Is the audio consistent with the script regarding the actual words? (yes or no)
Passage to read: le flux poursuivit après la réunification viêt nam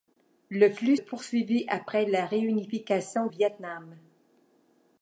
yes